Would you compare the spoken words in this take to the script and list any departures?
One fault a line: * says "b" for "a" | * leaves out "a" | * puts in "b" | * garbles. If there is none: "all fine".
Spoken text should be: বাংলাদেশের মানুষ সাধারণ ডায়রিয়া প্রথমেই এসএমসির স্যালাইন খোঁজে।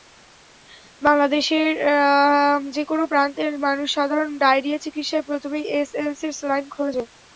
* puts in "যেকোনো প্রান্তের"
* puts in "চিকিৎসায়"